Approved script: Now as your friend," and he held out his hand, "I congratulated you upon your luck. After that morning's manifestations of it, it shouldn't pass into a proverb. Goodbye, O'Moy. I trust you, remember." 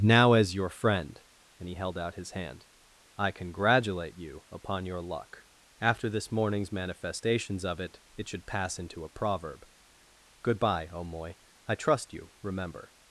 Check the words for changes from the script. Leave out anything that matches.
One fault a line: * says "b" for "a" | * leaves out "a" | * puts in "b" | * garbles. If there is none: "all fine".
* says "congratulate" for "congratulated"
* says "this" for "that"
* says "should" for "shouldn't"